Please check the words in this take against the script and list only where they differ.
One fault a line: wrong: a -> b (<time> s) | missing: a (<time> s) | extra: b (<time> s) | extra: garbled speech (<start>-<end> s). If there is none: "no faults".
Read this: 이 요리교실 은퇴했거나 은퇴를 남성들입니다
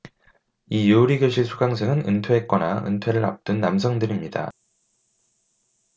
extra: 수강생은 (1.4 s)
extra: 앞둔 (3.3 s)